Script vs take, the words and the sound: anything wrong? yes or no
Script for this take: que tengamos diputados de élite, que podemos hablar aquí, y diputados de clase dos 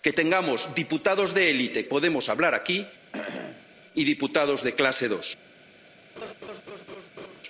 yes